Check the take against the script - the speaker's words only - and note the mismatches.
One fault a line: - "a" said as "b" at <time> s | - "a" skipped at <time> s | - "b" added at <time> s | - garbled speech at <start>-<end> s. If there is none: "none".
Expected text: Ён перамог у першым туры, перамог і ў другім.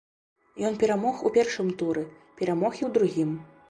none